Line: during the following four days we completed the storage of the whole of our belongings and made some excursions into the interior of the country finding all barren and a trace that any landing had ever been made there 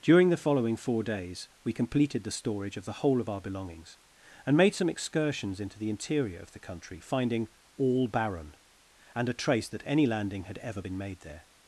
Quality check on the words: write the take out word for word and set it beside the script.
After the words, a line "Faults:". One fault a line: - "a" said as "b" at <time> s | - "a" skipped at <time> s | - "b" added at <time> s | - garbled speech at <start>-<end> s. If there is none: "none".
during the following four days we completed the storage of the whole of our belongings and made some excursions into the interior of the country finding all barren and a trace that any landing had ever been made there
Faults:
none